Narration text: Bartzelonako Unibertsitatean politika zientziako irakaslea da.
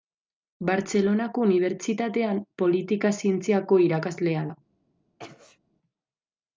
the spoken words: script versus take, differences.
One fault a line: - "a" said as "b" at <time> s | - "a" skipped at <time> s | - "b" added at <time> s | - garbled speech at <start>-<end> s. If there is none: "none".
none